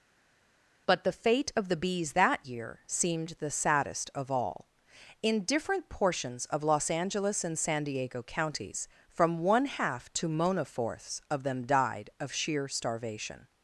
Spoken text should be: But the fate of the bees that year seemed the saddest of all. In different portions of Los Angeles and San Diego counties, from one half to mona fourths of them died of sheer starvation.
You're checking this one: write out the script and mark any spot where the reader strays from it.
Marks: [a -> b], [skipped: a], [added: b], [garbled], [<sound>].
But the fate of the bees that year seemed the saddest of all. In different portions of Los Angeles and San Diego counties, from one half to mona fourths of them died of sheer starvation.